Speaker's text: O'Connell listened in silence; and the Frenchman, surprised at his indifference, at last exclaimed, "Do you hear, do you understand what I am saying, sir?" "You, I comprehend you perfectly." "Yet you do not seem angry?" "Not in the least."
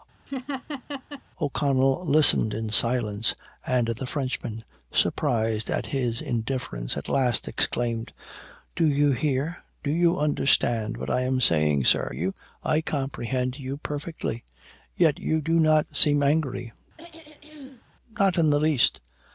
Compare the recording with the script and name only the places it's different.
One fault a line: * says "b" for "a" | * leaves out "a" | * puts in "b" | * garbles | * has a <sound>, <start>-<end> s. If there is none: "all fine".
* has a laugh, 0.3-1.2 s
* has a throat clearing, 17.0-17.8 s